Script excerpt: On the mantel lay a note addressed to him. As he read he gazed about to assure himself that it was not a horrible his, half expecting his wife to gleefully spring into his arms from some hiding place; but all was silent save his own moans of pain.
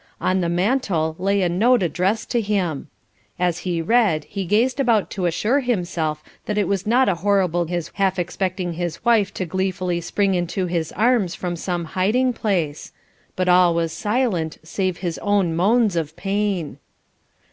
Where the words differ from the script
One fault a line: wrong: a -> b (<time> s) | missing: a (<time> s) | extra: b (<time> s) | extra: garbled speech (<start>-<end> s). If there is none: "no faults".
no faults